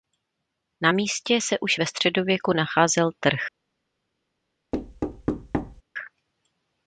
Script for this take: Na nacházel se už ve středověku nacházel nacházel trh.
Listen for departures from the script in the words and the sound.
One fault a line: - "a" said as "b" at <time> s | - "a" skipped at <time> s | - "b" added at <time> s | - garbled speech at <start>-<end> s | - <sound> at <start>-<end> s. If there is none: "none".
- "nacházel" said as "místě" at 0.9 s
- "nacházel" skipped at 3.1 s
- thud at 4.7-5.8 s